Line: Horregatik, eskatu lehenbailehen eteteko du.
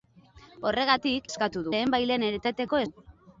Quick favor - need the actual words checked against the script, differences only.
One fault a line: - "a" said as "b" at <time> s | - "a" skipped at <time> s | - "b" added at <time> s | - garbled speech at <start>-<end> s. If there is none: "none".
none